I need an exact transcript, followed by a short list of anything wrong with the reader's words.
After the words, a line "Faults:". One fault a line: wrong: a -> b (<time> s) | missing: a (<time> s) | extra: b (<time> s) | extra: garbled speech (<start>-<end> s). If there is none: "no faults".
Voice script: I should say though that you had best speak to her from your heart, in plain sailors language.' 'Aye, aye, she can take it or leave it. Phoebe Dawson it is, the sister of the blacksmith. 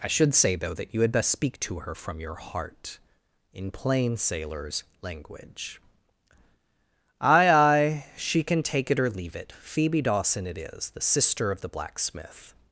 I should say though that you had best speak to her from your heart, in plain sailors language.' 'Aye, aye, she can take it or leave it. Phoebe Dawson it is, the sister of the blacksmith.
Faults:
no faults